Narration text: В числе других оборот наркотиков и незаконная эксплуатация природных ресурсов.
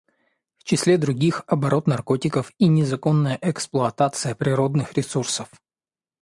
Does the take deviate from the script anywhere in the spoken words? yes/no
no